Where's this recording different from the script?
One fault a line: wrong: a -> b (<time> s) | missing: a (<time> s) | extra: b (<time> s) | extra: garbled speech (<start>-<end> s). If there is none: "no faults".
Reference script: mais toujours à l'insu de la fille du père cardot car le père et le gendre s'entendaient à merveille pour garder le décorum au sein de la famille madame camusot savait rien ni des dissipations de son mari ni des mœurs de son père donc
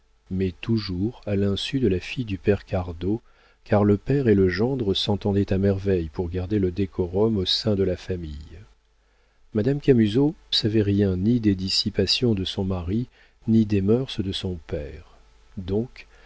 no faults